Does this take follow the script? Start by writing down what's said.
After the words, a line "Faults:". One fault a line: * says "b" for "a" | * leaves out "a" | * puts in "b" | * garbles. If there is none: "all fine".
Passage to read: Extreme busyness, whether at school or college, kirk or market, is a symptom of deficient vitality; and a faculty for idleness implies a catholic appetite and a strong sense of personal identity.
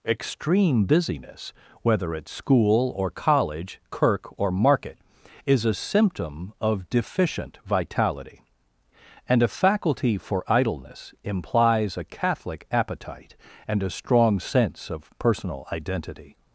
Extreme busyness, whether at school or college, kirk or market, is a symptom of deficient vitality; and a faculty for idleness implies a catholic appetite and a strong sense of personal identity.
Faults:
all fine